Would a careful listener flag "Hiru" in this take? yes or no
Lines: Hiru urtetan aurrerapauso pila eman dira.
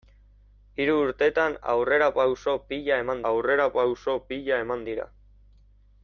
no